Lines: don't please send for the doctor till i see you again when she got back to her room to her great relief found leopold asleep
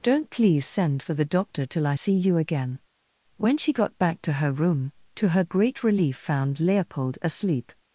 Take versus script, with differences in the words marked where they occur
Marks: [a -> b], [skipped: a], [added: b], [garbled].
don't please send for the doctor till i see you again when she got back to her room to her great relief found leopold asleep